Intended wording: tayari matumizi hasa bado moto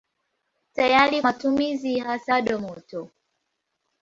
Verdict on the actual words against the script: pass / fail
pass